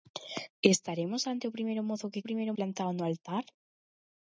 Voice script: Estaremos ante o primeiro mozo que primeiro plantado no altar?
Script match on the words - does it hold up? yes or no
yes